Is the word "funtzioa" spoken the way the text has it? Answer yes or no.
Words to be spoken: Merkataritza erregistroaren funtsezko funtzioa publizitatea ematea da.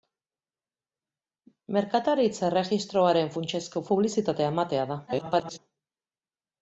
no